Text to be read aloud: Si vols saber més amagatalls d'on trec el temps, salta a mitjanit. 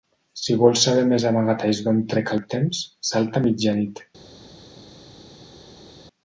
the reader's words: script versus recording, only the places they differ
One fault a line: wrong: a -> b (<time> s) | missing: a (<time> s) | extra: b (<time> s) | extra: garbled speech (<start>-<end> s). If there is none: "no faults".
no faults